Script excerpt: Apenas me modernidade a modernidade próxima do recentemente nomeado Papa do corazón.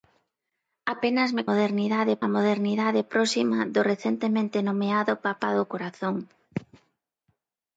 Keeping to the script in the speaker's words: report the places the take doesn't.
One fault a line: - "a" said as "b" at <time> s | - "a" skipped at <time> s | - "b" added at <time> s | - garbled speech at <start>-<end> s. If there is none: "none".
none